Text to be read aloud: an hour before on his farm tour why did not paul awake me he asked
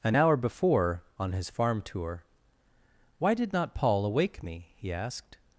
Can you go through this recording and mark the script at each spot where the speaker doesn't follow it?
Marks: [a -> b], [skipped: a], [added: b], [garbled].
an hour before on his farm tour why did not paul awake me he asked